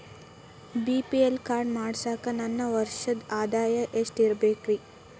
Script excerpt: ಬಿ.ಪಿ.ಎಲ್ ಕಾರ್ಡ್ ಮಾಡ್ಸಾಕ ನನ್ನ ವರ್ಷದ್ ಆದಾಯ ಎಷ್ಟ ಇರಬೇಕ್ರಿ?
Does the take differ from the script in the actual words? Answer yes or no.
no